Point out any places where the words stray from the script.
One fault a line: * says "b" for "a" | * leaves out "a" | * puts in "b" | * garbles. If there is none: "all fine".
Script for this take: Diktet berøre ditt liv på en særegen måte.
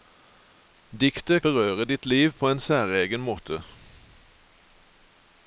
all fine